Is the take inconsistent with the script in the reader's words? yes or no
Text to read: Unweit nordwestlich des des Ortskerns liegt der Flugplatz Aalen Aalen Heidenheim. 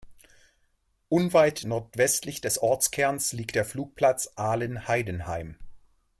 yes